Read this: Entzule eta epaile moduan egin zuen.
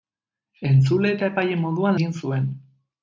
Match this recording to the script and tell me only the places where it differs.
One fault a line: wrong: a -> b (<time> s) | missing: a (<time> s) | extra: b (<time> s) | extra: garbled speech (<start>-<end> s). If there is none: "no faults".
no faults